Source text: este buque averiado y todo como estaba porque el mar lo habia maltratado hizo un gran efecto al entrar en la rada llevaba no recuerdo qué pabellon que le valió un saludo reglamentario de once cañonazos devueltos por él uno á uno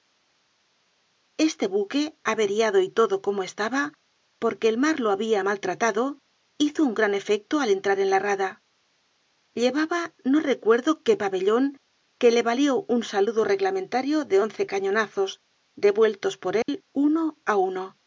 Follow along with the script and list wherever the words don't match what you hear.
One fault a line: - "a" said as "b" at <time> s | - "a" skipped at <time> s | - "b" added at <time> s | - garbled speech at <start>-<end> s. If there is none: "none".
none